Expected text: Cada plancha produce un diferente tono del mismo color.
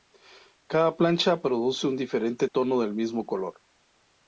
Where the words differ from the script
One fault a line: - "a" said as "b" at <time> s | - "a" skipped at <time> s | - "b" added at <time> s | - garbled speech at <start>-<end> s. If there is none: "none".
none